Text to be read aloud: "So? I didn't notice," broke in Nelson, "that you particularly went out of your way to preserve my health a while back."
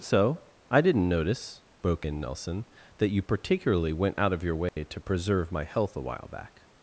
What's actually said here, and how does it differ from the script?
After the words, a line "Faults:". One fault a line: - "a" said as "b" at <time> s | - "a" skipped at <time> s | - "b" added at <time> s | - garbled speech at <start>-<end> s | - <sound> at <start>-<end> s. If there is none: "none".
"So? I didn't notice," broke in Nelson, "that you particularly went out of your way to preserve my health a while back."
Faults:
- dropout at 4.7-4.8 s